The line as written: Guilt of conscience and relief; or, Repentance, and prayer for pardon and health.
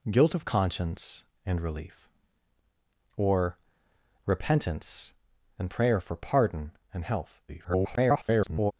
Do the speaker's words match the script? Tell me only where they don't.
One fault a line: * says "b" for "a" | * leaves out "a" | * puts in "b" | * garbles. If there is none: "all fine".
* garbles